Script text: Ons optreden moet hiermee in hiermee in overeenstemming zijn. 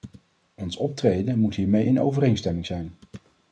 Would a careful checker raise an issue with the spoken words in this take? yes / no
yes